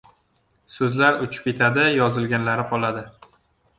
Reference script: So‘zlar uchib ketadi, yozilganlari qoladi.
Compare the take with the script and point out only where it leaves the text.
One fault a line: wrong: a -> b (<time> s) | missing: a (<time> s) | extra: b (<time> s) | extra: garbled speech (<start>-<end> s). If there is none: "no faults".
no faults